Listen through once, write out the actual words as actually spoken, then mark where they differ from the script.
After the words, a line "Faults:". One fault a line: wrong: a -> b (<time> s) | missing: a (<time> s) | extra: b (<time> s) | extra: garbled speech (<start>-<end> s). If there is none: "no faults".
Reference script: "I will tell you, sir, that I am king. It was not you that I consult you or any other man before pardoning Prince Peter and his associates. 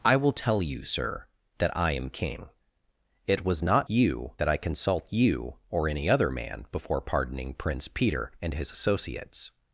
"I will tell you, sir, that I am king. It was not you that I consult you or any other man before pardoning Prince Peter and his associates.
Faults:
no faults